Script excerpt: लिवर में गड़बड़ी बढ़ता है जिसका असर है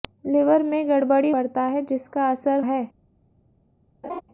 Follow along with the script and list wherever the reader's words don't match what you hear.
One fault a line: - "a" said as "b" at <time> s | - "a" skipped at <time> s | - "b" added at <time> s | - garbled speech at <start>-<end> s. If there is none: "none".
none